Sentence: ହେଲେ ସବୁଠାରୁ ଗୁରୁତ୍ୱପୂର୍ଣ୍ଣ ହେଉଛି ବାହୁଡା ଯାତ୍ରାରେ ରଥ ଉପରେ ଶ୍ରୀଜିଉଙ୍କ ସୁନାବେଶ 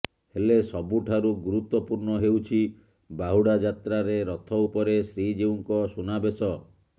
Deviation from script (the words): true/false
false